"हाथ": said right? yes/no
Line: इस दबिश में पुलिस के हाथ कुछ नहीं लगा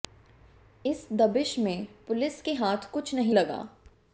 yes